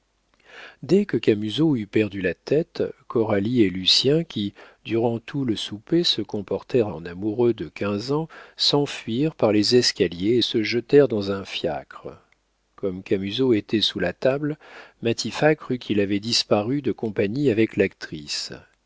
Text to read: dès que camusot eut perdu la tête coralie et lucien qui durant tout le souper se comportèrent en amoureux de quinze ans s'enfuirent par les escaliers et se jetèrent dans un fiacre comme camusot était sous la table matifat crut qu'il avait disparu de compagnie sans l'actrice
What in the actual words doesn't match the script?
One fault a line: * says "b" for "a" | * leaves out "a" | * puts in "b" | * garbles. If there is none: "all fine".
* says "avec" for "sans"